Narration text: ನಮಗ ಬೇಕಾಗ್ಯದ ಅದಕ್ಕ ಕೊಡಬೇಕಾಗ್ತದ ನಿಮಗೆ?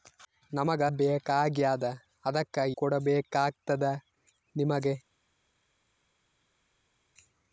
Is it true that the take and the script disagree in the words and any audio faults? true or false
false